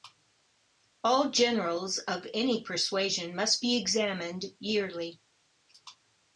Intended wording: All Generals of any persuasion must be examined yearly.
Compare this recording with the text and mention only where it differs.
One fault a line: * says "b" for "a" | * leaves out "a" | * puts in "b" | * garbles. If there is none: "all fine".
all fine